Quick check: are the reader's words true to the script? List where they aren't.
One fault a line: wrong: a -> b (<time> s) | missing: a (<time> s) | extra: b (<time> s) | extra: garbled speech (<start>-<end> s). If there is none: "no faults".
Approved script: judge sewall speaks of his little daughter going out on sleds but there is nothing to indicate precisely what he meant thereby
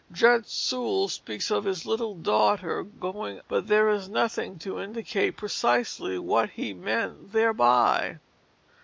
missing: out on sleds (3.4 s)